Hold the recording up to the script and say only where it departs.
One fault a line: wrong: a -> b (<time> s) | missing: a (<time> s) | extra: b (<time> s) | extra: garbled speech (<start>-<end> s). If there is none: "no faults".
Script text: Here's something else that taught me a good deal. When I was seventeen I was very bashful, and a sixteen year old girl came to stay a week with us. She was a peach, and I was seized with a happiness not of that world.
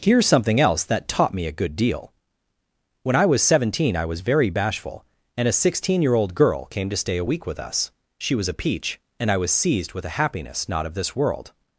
wrong: that -> this (10.9 s)